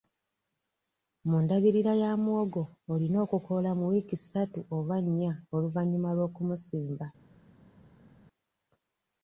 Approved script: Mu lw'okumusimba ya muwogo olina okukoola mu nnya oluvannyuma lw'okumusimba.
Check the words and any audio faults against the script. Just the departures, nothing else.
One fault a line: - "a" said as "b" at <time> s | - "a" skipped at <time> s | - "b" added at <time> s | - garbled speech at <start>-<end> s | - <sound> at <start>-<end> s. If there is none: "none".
- "lw'okumusimba" said as "ndabirira" at 1.4 s
- "wiiki ssatu oba" added at 3.9 s